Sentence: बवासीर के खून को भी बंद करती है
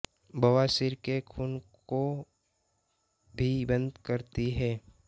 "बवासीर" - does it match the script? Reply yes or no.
yes